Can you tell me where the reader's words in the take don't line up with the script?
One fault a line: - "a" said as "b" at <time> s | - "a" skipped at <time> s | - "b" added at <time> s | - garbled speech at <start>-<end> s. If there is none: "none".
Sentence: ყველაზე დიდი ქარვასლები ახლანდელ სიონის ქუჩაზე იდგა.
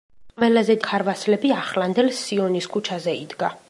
- "დიდი" skipped at 0.8 s